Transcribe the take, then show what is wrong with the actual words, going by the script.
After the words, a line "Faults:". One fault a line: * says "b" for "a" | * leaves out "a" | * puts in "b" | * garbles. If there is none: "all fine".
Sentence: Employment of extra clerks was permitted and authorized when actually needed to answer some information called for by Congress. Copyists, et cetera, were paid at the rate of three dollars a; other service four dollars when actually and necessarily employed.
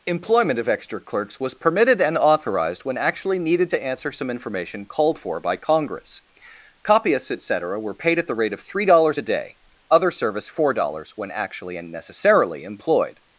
Employment of extra clerks was permitted and authorized when actually needed to answer some information called for by Congress. Copyists, et cetera, were paid at the rate of three dollars a day; other service four dollars when actually and necessarily employed.
Faults:
* puts in "day"